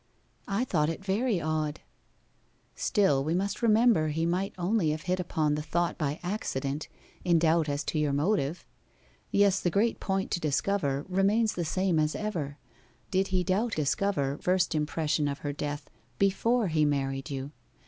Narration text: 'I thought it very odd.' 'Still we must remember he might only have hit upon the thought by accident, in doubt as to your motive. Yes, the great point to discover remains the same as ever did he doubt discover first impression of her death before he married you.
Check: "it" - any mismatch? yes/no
no